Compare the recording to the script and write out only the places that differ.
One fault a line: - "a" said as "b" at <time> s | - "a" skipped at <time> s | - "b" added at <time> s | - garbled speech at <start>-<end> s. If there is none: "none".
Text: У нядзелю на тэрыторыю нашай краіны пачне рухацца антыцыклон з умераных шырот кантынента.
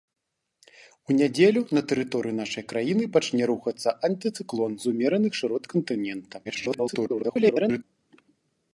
- garbled speech at 6.4-7.8 s